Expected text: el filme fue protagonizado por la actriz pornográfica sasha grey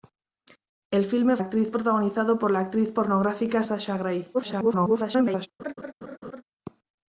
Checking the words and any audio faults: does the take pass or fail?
fail